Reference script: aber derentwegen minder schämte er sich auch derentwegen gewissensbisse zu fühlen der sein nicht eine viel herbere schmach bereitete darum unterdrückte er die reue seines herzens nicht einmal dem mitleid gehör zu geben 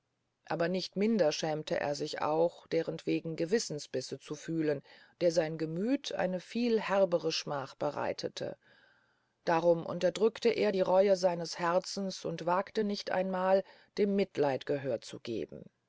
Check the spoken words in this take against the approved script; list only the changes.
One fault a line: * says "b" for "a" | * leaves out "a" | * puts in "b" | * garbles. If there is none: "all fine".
* says "nicht" for "derentwegen"
* says "gemüth" for "nicht"
* puts in "und wagte"